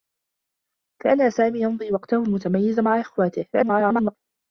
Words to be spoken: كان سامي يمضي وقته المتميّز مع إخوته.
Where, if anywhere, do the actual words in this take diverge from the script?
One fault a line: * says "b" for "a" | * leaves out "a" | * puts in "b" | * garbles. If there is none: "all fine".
* garbles